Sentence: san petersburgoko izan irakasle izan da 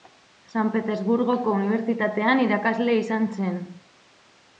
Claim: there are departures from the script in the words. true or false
true